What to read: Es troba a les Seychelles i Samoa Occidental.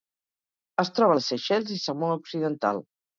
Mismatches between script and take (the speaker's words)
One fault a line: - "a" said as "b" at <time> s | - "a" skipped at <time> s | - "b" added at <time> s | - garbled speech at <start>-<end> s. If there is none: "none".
none